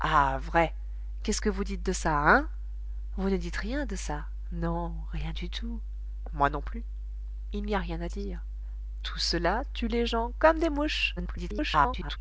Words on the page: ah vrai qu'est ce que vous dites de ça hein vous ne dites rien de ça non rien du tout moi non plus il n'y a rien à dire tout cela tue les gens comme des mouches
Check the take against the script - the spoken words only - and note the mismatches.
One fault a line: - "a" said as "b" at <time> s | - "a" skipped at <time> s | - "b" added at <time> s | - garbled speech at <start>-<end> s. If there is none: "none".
- garbled speech at 11.2-12.2 s